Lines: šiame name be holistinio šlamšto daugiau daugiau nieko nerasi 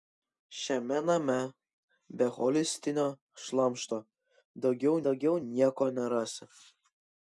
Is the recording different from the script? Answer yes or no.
no